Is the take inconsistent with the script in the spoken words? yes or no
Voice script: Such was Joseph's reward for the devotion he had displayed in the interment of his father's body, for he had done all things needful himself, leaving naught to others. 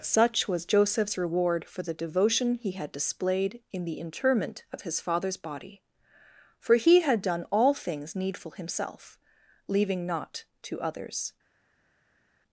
no